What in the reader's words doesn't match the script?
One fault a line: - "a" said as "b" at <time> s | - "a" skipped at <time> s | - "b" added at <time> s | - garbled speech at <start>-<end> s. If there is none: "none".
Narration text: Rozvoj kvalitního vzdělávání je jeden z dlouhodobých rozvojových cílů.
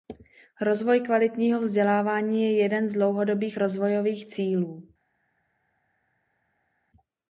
none